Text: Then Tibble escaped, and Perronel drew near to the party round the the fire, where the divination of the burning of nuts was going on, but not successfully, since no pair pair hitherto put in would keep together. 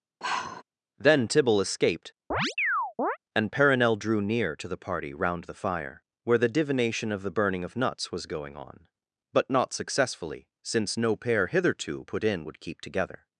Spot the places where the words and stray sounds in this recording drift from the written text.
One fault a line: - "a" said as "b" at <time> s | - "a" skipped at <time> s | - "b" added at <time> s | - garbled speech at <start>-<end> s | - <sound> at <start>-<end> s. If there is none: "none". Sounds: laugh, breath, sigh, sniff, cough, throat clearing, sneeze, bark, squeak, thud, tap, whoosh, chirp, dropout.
- sigh at 0.2-0.6 s
- chirp at 2.3-3.2 s
- "the" skipped at 5.6 s
- "pair" skipped at 11.5 s